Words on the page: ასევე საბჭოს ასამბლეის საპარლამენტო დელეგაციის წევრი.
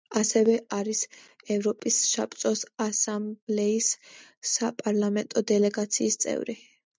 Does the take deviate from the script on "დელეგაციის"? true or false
false